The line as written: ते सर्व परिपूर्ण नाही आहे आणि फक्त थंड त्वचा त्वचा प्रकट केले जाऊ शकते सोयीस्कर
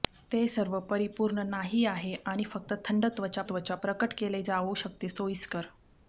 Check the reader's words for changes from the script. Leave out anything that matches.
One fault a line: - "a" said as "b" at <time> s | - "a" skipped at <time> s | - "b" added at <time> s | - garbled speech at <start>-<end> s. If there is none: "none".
none